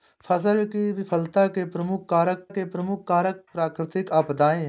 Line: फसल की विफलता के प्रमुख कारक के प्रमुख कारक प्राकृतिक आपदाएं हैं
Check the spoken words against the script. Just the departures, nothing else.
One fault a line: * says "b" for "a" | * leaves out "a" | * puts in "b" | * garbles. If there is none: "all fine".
all fine